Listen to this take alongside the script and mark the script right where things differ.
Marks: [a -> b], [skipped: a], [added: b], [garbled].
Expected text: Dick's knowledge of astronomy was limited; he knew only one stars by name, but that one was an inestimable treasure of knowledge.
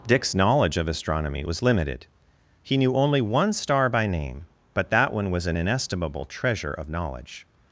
Dick's knowledge of astronomy was limited; he knew only one [stars -> star] by name, but that one was an inestimable treasure of knowledge.